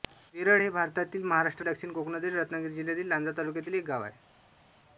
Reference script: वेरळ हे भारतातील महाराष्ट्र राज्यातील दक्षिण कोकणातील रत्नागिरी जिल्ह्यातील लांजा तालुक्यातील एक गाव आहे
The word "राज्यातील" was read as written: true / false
false